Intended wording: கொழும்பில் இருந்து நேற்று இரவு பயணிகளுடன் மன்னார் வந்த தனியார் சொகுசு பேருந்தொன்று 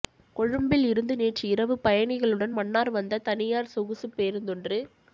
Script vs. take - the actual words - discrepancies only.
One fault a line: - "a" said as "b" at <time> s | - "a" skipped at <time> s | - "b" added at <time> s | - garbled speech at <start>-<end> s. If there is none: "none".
none